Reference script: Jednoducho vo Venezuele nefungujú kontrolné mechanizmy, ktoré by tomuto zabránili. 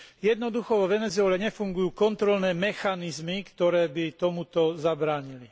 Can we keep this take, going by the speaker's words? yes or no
yes